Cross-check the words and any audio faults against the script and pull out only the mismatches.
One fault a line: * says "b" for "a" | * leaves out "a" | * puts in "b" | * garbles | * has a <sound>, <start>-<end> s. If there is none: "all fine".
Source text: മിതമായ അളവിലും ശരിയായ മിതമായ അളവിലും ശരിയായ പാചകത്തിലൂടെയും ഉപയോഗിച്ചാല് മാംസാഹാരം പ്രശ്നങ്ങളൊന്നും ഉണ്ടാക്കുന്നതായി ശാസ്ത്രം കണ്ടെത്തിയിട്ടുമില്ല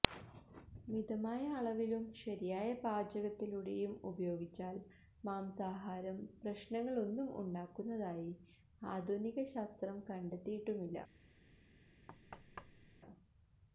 * leaves out "മിതമായ അളവിലും ശരിയായ"
* puts in "ആധുനിക"
* has a thud, 12.1-13.0 s